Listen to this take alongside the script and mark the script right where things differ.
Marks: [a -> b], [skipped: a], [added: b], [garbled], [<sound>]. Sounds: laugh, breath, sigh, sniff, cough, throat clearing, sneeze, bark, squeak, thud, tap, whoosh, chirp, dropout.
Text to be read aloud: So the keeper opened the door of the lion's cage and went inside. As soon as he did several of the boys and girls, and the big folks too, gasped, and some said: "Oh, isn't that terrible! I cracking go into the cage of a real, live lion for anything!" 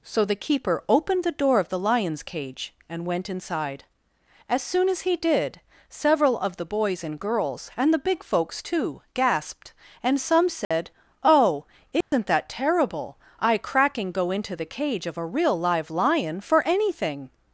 So the keeper opened the door of the lion's cage and went inside. As soon as he did several of the boys and girls, and the big folks too, gasped, and some said: [dropout] "Oh, isn't [dropout] that terrible! I cracking go into the cage of a real, live lion for anything!"